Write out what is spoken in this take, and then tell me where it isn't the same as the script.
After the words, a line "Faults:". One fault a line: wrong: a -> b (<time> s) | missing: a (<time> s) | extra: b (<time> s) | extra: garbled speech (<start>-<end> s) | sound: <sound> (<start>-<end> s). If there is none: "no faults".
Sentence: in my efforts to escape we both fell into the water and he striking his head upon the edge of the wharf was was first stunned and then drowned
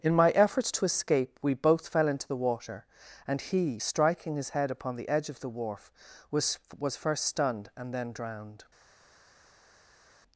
in my efforts to escape we both fell into the water and he striking his head upon the edge of the wharf was was first stunned and then drowned
Faults:
no faults